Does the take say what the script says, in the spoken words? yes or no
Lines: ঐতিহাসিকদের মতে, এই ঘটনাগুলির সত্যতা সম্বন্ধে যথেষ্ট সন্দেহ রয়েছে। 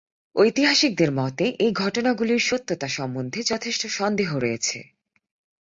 yes